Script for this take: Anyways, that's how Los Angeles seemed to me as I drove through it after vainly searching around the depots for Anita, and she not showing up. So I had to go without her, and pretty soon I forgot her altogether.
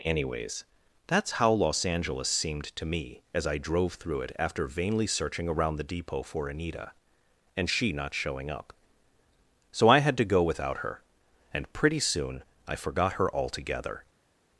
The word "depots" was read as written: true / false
false